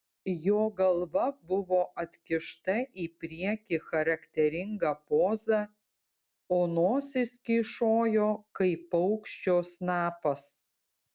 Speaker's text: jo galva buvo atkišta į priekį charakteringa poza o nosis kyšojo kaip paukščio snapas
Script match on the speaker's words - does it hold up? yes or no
yes